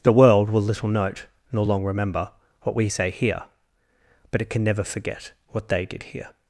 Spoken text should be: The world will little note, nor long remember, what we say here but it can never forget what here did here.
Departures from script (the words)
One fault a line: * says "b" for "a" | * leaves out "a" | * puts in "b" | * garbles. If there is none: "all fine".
* says "they" for "here"